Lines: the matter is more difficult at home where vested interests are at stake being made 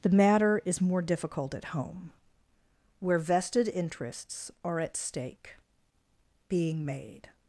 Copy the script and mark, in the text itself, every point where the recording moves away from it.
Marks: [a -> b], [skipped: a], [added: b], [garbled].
the matter is more difficult at home where vested interests are at stake being made